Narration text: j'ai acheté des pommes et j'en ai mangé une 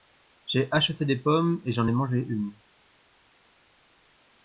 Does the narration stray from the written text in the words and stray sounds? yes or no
no